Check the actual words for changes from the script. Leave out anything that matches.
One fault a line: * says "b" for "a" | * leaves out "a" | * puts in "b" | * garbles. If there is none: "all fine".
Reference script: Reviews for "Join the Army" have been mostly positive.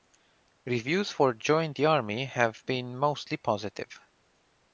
all fine